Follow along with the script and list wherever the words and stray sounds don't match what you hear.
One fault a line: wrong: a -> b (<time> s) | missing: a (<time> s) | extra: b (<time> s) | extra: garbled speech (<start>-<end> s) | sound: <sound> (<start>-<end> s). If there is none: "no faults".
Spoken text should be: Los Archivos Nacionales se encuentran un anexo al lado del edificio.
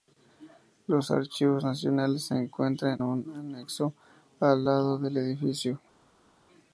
no faults